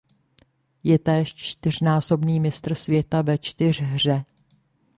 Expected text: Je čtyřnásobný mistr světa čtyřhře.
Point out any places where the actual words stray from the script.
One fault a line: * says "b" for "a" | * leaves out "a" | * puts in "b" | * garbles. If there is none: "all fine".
* puts in "též"
* puts in "ve"